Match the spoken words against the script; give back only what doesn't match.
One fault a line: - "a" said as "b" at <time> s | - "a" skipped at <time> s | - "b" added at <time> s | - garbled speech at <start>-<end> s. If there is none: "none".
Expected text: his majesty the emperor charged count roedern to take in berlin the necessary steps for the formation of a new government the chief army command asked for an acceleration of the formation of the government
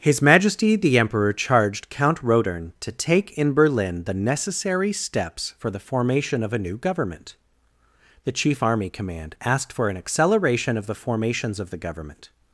- "formation" said as "formations" at 10.9 s